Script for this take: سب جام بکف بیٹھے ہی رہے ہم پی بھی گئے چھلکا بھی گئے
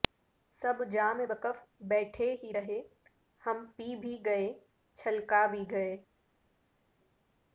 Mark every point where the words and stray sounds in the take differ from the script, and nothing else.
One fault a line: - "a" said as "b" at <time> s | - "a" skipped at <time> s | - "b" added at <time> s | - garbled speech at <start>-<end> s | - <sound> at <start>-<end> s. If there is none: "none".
none